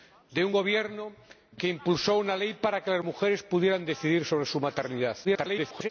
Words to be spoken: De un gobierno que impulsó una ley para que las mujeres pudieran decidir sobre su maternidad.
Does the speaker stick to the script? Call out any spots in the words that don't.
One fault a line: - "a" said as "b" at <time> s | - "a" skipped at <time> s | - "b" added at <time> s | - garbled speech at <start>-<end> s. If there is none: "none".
- garbled speech at 5.2-5.9 s